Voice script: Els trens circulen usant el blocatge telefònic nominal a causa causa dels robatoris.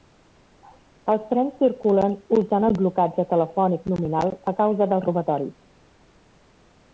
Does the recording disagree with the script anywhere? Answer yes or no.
yes